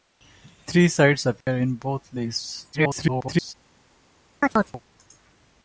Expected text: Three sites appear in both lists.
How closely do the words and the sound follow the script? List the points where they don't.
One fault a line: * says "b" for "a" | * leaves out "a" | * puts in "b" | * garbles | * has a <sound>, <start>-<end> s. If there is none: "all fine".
* has a dropout, 1.4-1.5 s
* garbles
* has a chirp, 4.4-4.8 s